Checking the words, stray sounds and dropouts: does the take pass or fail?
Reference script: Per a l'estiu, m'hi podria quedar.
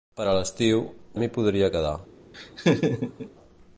fail